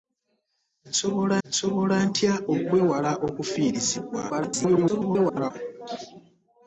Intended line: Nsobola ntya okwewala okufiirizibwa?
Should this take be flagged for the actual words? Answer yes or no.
yes